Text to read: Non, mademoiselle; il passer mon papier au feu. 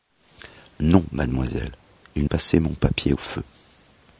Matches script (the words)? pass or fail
pass